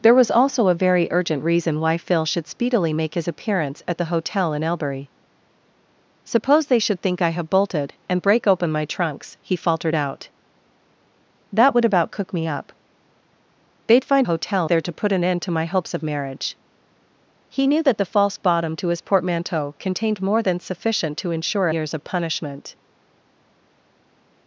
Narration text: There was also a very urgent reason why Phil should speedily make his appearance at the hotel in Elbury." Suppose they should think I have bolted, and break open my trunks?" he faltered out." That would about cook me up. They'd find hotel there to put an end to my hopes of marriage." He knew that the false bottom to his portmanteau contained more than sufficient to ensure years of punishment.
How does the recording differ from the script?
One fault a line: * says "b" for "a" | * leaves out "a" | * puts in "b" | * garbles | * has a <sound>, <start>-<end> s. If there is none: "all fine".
all fine